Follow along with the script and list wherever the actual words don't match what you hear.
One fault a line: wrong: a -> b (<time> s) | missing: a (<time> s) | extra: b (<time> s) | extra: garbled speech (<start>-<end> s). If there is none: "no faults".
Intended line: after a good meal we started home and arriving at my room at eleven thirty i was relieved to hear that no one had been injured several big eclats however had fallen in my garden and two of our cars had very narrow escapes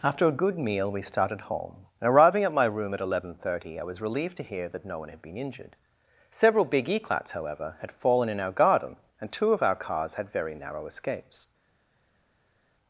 wrong: my -> our (8.4 s)